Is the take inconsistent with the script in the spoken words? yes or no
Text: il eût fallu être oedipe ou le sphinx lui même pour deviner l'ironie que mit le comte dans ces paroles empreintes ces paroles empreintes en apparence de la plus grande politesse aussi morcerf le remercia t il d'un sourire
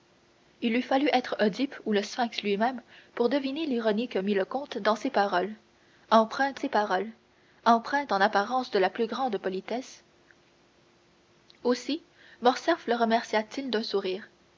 no